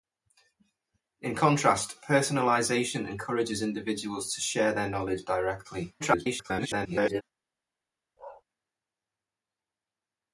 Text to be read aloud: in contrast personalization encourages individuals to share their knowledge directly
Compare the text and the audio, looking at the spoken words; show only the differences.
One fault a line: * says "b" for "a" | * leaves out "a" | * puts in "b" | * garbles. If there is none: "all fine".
* garbles